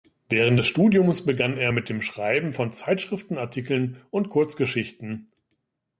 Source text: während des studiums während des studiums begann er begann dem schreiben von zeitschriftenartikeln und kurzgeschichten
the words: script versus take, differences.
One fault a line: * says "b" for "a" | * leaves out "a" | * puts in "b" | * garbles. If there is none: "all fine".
* leaves out "während des studiums"
* says "mit" for "begann"